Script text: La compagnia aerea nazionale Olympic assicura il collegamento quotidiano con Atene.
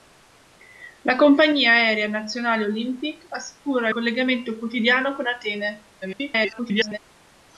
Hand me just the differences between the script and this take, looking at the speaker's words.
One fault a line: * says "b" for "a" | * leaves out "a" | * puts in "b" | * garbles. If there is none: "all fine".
* leaves out "il"
* garbles